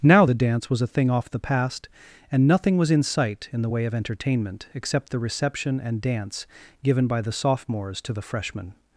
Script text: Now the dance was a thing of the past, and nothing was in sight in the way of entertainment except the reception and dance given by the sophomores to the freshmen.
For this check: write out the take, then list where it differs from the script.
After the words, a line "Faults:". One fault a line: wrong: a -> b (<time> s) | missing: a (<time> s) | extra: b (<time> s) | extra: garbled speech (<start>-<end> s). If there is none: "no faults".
Now the dance was a thing off the past, and nothing was in sight in the way of entertainment except the reception and dance given by the sophomores to the freshmen.
Faults:
wrong: of -> off (1.1 s)